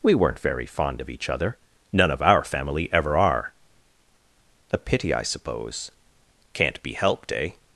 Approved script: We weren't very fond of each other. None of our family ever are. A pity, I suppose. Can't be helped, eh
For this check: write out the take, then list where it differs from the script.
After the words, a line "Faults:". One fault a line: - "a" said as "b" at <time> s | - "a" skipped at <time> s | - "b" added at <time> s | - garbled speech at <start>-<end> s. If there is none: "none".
We weren't very fond of each other. None of our family ever are. A pity, I suppose. Can't be helped, eh
Faults:
none